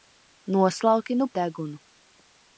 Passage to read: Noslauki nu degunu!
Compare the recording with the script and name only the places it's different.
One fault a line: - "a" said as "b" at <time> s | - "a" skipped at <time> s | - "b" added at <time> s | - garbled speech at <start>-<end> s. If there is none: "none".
none